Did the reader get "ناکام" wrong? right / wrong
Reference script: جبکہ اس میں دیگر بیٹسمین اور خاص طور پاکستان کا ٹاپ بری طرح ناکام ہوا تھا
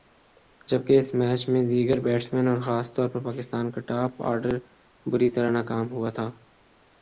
right